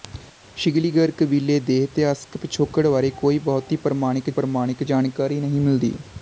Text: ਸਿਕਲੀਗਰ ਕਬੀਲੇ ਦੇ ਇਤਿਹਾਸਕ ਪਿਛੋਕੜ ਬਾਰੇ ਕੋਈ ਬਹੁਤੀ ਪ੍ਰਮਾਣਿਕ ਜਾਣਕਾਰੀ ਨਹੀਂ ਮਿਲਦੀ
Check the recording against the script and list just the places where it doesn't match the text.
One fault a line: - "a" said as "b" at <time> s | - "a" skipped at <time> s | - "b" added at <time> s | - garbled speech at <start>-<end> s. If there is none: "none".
- "ਪ੍ਰਮਾਣਿਕ" added at 4.3 s